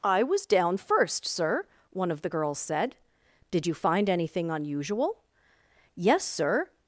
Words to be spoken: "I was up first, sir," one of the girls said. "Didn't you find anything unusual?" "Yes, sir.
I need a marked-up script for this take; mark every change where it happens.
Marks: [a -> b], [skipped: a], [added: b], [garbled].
"I was [up -> down] first, sir," one of the girls said. ["Didn't -> Did] you find anything unusual?" "Yes, sir.